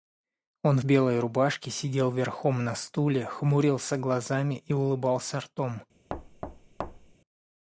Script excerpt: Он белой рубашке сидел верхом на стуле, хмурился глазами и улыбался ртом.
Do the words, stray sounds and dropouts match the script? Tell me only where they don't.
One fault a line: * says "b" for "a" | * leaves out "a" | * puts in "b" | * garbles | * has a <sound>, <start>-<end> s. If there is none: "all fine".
* has a thud, 6.1-7.1 s